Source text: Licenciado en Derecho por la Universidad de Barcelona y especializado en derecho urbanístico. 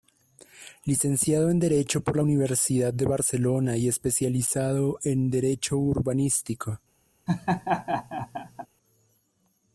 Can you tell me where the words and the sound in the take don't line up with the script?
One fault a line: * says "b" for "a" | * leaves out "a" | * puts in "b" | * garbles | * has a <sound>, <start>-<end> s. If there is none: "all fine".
* has a laugh, 7.3-8.7 s